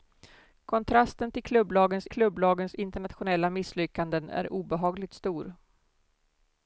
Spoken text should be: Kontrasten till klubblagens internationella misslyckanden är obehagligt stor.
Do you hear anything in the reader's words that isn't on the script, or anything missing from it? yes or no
yes